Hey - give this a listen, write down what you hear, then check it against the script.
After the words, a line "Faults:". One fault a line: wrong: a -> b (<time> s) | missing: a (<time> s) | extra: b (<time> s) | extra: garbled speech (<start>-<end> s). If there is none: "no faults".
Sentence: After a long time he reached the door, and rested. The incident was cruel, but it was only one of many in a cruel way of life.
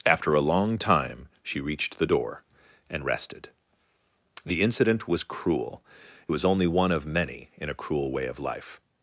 After a long time she reached the door, and rested. The incident was cruel, it was only one of many in a cruel way of life.
Faults:
wrong: he -> she (1.4 s)
missing: but (5.8 s)